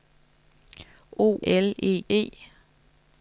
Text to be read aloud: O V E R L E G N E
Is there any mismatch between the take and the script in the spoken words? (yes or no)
yes